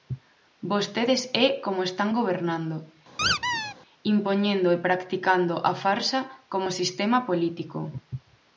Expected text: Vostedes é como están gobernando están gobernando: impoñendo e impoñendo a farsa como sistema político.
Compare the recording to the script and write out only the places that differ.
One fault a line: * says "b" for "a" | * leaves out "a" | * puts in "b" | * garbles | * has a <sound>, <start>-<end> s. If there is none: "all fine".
* leaves out "están gobernando"
* has a squeak, 3.2-3.7 s
* says "practicando" for "impoñendo"